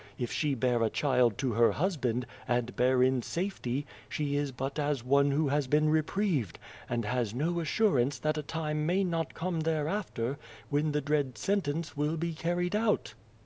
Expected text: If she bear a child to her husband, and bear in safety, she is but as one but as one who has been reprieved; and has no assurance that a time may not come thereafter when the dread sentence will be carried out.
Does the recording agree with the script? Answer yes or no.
no